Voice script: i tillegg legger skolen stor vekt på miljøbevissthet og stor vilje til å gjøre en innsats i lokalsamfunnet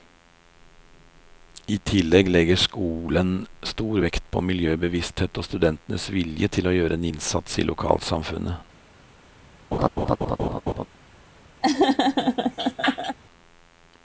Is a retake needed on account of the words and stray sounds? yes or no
yes